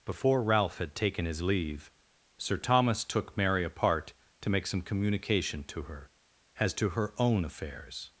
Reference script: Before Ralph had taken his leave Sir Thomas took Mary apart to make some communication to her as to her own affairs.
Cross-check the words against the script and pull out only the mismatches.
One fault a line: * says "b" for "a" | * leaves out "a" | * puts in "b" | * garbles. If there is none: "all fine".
all fine